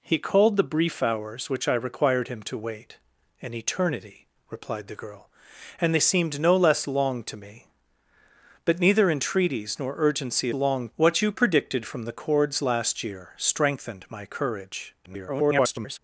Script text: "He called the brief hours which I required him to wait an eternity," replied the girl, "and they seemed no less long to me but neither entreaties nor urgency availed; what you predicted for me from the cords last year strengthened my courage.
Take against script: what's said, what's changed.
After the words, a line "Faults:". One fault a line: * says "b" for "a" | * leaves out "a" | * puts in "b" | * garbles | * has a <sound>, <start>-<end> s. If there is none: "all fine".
"He called the brief hours which I required him to wait an eternity," replied the girl, "and they seemed no less long to me but neither entreaties nor urgency long; what you predicted from the cords last year strengthened my courage. [garbled]
Faults:
* says "long" for "availed"
* leaves out "for me"
* garbles